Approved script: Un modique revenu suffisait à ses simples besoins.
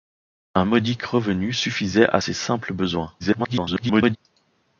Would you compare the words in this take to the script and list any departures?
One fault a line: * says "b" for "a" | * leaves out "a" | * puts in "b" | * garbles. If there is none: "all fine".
* garbles